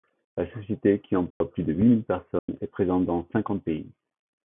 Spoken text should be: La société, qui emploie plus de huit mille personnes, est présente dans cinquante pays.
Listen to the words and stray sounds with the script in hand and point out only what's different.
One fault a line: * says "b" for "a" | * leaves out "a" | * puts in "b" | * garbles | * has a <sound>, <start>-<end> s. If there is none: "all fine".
* has a dropout, 1.3-1.4 s
* has a dropout, 2.4-2.5 s